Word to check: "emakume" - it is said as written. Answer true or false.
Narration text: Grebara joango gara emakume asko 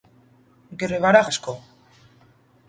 false